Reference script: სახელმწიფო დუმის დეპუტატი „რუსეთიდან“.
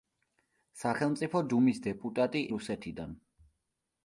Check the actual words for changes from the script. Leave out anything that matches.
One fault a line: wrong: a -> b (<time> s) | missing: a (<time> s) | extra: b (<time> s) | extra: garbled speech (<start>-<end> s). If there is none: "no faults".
no faults